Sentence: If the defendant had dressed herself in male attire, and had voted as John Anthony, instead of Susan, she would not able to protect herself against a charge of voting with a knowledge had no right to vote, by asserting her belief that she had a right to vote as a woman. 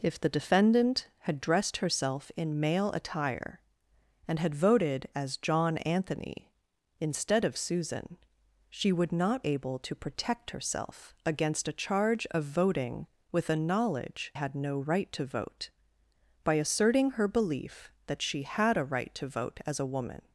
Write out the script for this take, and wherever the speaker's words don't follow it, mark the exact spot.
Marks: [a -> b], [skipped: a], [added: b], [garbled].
If the defendant had dressed herself in male attire, and had voted as John Anthony, instead of Susan, she would not able to protect herself against a charge of voting with a knowledge had no right to vote, by asserting her belief that she had a right to vote as a woman.